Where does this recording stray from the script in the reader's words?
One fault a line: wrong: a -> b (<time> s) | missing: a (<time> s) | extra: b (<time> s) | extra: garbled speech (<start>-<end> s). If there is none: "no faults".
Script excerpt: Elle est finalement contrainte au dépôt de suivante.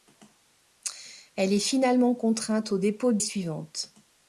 no faults